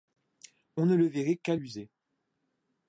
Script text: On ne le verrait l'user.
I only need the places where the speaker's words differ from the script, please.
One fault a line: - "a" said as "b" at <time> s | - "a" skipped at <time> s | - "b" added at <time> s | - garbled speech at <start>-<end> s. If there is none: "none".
- "qu'à" added at 1.4 s